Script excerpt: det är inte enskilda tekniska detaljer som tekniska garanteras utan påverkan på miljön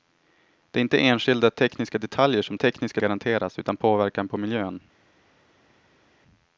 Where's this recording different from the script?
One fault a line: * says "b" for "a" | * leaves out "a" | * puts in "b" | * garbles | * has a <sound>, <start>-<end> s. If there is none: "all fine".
all fine